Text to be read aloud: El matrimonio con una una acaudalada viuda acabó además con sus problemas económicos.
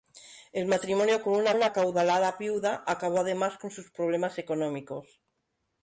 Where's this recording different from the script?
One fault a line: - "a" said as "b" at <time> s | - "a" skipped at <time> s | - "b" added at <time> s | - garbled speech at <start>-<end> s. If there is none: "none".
none